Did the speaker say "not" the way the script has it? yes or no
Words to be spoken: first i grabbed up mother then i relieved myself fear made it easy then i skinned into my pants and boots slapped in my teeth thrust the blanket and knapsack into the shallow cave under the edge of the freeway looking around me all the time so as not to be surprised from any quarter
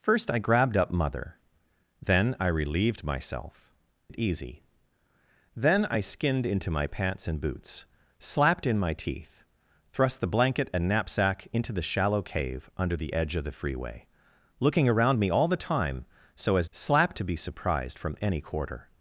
no